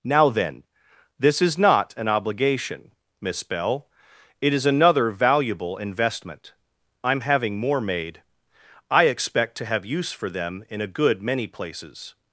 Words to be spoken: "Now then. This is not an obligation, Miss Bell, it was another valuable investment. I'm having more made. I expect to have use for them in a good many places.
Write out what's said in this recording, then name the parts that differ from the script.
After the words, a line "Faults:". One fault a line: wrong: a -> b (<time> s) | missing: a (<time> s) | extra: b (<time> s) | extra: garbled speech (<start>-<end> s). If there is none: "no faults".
"Now then. This is not an obligation, Miss Bell, it is another valuable investment. I'm having more made. I expect to have use for them in a good many places.
Faults:
wrong: was -> is (4.5 s)